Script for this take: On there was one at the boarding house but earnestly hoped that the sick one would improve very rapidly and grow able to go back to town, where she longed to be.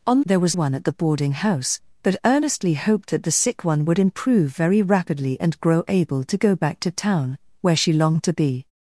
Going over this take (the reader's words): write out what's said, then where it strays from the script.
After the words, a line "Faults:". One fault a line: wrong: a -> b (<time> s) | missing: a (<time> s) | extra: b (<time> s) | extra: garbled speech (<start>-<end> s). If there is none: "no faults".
On there was one at the boarding house but earnestly hoped that the sick one would improve very rapidly and grow able to go back to town, where she longed to be.
Faults:
no faults